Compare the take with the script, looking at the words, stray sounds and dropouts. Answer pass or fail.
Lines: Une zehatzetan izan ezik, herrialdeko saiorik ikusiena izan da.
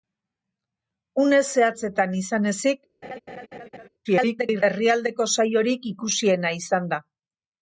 fail